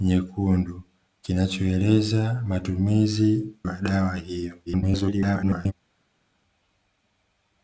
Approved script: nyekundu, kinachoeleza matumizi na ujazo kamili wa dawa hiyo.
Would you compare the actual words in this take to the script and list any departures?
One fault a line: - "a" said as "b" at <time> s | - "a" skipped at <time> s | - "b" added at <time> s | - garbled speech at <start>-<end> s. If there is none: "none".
- "na ujazo kamili" skipped at 3.5 s
- garbled speech at 4.7-5.7 s